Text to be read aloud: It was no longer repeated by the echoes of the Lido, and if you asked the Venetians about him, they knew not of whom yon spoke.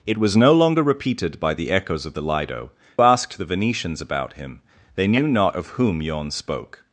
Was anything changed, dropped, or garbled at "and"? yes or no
yes